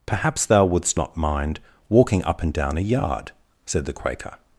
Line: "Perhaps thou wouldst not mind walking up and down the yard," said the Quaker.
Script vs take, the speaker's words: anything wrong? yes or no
yes